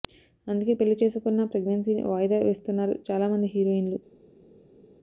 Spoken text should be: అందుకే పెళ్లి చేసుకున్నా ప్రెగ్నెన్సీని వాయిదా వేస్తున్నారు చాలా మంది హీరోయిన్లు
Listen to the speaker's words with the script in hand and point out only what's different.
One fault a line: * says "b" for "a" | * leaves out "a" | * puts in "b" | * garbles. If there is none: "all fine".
all fine